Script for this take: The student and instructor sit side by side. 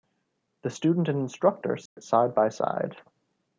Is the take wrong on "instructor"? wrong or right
right